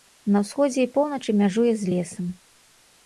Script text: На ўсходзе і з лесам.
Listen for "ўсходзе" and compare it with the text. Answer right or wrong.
right